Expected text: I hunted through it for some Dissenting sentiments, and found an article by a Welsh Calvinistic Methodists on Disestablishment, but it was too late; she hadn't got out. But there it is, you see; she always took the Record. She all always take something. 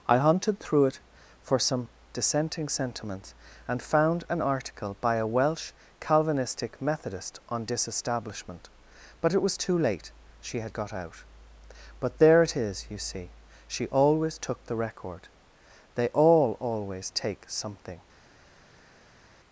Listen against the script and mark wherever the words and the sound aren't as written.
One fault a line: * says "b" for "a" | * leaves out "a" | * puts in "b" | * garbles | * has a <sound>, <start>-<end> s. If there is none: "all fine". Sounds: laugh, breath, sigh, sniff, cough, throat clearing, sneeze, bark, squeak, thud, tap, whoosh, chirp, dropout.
* says "Methodist" for "Methodists"
* says "had" for "hadn't"
* says "They" for "She"